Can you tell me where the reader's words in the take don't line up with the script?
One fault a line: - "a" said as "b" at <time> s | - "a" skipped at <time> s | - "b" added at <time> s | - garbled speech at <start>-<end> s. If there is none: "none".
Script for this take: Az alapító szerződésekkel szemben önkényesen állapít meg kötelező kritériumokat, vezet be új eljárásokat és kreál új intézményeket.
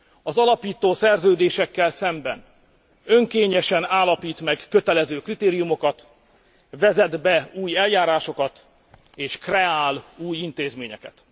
none